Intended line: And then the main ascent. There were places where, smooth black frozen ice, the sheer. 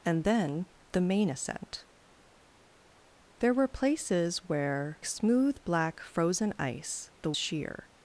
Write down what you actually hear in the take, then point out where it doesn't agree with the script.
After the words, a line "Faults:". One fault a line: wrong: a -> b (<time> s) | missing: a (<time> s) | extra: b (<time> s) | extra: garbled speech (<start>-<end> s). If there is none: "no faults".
And then the main ascent. There were places where, smooth black frozen ice, the sheer.
Faults:
no faults